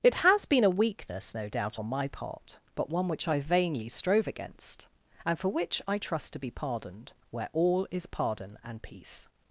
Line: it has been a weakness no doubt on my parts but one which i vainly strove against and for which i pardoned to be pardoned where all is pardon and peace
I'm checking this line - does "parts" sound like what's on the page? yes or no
no